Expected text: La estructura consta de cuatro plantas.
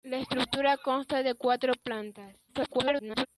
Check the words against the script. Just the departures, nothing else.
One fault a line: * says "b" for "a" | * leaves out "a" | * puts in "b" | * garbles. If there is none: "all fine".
* garbles